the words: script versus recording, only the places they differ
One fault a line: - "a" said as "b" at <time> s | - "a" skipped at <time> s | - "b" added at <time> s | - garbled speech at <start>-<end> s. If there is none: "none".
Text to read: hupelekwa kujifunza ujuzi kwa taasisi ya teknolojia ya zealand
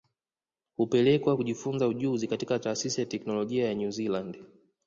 - "kwa" said as "katika" at 2.3 s
- "new" added at 3.7 s